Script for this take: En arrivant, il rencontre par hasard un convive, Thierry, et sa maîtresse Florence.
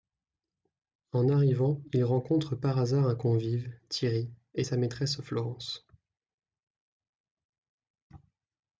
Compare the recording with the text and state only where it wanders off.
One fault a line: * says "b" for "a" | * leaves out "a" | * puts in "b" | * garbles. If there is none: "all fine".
all fine